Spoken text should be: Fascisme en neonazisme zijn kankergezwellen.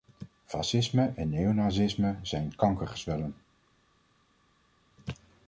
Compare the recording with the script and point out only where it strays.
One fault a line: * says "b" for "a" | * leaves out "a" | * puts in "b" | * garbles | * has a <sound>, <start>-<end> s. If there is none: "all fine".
all fine